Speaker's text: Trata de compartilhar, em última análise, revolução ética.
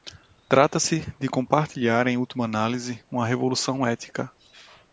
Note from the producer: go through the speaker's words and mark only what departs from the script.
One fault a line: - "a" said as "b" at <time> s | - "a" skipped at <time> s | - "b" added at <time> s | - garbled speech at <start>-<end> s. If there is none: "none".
- "se" added at 0.8 s
- "uma" added at 3.1 s